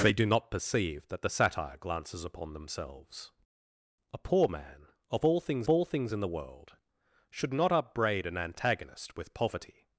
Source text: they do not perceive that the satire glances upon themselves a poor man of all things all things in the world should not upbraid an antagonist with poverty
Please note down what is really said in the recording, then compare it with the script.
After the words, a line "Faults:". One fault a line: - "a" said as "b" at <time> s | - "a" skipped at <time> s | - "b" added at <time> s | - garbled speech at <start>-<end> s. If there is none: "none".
they do not perceive that the satire glances upon themselves a poor man of all things all things in the world should not upbraid an antagonist with poverty
Faults:
none